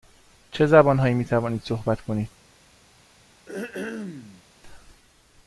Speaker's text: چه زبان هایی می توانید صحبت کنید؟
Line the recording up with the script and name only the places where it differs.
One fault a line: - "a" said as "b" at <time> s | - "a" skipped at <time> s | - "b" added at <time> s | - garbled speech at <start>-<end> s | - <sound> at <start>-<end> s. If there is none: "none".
- throat clearing at 3.5-4.4 s